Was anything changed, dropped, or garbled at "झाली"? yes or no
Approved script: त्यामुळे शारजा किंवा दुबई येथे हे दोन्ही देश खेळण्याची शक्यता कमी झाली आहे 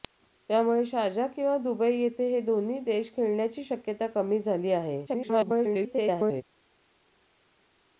no